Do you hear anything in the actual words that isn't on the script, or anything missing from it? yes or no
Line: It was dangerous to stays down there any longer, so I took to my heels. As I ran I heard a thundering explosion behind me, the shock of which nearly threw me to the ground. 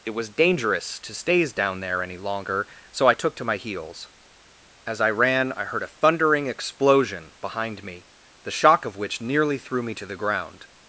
no